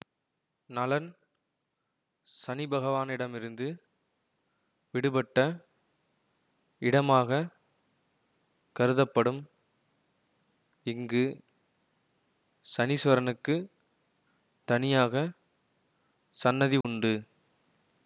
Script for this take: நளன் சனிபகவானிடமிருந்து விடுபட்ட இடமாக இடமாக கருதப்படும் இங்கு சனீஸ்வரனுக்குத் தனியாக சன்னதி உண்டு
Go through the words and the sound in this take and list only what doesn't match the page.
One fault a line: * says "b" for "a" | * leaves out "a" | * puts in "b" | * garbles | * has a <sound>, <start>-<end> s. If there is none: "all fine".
* leaves out "இடமாக"
* has a dropout, 16.8-16.8 s